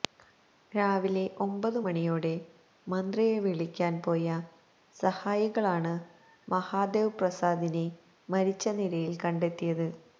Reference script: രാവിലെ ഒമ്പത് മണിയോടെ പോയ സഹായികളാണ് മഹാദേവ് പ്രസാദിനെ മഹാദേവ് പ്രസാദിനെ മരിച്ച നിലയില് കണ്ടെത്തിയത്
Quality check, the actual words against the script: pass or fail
fail